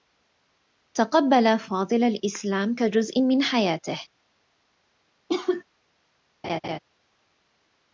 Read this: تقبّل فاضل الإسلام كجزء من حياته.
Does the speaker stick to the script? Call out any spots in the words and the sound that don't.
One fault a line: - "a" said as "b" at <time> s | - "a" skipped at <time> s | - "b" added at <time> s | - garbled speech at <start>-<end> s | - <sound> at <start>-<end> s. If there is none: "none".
- cough at 5.3-5.6 s
- laugh at 6.4-6.8 s